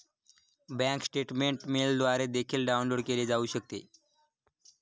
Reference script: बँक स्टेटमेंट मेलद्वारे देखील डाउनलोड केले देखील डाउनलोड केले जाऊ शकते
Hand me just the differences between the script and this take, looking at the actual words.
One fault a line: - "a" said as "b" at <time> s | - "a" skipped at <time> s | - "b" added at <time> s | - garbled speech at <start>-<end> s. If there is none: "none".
- "देखील डाउनलोड केले" skipped at 3.2 s